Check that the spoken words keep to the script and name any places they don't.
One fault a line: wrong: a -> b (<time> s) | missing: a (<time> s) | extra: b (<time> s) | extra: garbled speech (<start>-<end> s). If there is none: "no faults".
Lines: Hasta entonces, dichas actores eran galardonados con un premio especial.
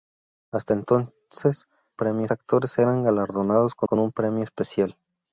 wrong: dichas -> premio (1.9 s)
extra: con (3.8 s)